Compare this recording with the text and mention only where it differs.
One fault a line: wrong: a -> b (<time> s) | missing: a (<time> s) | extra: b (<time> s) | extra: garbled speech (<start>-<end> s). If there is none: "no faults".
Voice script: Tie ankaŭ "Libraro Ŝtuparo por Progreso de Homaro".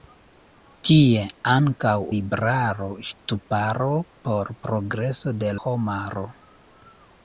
no faults